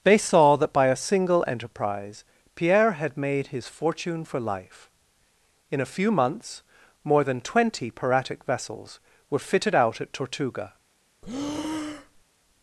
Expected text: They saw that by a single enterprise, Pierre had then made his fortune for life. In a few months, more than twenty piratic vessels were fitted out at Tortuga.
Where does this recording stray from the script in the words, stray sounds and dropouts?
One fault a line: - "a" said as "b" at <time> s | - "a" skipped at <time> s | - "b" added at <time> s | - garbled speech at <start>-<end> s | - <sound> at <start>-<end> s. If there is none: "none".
- "then" skipped at 3.2 s
- breath at 11.2-12.2 s